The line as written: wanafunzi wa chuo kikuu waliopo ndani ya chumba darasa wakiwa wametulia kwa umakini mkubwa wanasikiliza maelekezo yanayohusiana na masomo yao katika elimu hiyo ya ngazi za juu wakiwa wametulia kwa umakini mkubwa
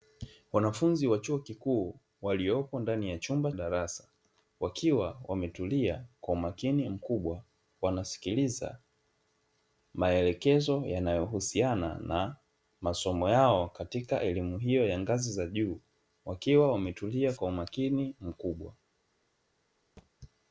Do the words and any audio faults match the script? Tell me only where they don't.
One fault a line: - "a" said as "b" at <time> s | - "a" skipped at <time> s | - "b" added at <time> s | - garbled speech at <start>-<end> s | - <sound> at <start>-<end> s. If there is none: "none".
- thud at 20.0-20.1 s